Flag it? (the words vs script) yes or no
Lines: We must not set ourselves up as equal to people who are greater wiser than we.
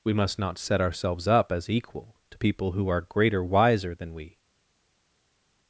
no